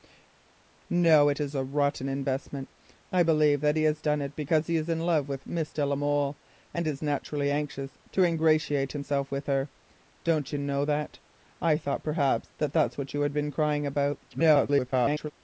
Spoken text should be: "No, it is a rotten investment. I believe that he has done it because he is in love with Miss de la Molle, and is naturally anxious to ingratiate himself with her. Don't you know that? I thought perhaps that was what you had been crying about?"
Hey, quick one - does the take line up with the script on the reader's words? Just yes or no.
no